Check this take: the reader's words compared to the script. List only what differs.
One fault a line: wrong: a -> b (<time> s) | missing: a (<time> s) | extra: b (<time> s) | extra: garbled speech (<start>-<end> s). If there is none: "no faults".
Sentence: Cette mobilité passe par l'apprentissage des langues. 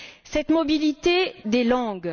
missing: passe par l'apprentissage (1.3 s)